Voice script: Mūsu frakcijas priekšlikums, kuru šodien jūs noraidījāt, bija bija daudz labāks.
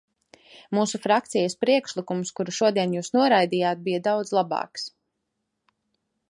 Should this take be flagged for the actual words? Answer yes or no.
yes